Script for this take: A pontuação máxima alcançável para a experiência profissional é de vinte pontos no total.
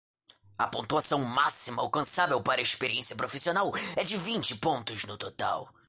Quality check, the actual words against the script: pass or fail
pass